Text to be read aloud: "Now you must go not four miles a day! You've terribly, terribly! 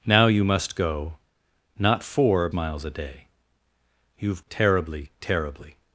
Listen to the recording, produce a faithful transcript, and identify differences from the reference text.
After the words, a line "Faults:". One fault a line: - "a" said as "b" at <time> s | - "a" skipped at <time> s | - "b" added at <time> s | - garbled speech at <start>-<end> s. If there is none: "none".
"Now you must go not four miles a day! You've terribly, terribly!
Faults:
none